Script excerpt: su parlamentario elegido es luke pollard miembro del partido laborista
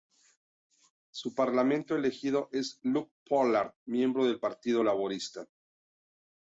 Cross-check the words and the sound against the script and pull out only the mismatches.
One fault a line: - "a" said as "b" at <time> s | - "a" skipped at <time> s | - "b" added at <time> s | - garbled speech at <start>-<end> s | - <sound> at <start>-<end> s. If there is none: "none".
none